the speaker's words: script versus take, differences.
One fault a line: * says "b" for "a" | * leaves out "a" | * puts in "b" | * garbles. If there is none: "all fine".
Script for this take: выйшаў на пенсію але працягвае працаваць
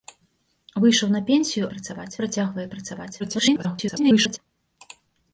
* says "працаваць" for "але"
* garbles